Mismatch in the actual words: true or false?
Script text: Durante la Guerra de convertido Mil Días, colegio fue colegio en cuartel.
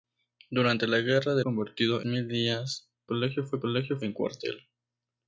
false